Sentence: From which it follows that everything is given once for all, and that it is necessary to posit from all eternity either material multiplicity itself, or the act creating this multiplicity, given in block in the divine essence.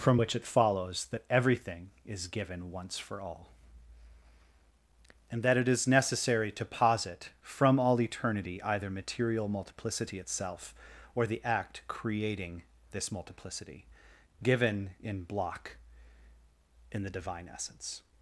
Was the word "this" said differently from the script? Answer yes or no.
no